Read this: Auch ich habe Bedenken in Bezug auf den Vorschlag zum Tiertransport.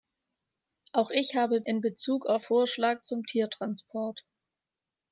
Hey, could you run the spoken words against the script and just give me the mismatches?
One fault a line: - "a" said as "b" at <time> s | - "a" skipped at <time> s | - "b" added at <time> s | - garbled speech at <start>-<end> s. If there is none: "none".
- "Bedenken" skipped at 1.6 s
- "den" skipped at 2.4 s